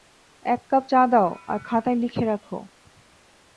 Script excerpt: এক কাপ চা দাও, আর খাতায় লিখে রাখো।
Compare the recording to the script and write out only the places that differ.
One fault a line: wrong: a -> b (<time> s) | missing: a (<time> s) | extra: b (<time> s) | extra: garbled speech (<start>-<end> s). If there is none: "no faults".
no faults